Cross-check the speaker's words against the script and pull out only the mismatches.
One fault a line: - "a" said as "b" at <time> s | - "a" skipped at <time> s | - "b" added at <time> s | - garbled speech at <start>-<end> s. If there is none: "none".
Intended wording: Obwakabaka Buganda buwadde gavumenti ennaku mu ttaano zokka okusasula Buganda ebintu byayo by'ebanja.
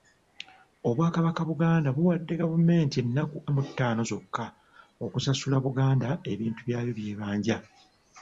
none